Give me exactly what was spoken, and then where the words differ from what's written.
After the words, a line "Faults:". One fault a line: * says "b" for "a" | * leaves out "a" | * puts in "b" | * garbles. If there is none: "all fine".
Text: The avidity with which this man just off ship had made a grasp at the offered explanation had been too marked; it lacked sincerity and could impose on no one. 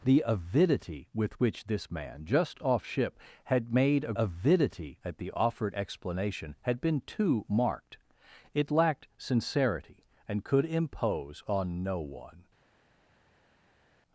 The avidity with which this man just off ship had made a avidity at the offered explanation had been too marked; it lacked sincerity and could impose on no one.
Faults:
* says "avidity" for "grasp"